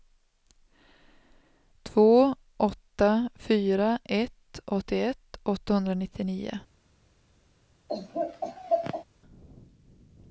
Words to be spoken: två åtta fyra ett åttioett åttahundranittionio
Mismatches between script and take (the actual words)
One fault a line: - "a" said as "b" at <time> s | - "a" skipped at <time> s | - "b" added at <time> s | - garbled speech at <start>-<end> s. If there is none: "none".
none